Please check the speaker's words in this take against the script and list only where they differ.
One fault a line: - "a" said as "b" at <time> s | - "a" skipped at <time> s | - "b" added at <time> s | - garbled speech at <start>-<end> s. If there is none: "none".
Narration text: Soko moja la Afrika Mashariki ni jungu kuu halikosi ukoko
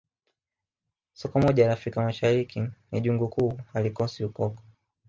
none